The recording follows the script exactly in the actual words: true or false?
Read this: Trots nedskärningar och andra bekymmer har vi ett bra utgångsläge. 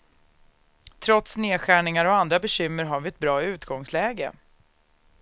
true